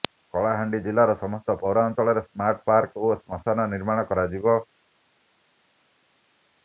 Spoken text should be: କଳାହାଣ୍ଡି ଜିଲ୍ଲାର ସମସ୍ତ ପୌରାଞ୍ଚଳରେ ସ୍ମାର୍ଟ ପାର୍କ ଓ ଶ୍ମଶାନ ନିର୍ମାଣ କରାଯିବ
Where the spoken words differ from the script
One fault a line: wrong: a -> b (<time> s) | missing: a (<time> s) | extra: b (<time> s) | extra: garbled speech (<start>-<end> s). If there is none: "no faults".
no faults